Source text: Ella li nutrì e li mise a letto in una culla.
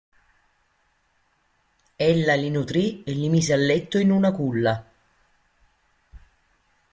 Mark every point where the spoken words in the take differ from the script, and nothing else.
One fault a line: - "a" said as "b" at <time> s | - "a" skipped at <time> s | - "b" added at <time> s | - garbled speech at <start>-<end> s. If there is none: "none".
none